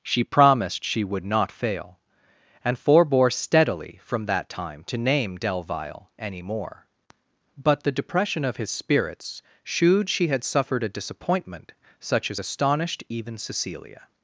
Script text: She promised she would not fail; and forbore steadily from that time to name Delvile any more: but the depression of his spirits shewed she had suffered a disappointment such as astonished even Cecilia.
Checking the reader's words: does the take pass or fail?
pass